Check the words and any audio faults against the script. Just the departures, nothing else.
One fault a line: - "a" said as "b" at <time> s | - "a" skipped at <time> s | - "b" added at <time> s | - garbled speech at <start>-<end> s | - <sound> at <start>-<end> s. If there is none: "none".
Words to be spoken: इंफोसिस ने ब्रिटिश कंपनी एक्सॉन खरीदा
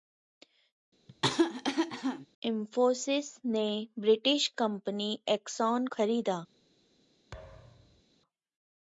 - cough at 1.1-2.3 s
- thud at 7.3-8.0 s